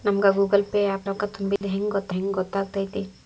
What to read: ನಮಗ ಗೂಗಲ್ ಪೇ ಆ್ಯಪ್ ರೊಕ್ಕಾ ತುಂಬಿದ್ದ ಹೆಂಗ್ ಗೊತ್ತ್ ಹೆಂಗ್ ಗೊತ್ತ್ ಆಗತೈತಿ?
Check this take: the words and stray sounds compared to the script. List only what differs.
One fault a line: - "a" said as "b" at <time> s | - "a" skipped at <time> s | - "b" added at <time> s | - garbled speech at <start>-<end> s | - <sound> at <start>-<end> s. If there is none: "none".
- dropout at 1.6-1.6 s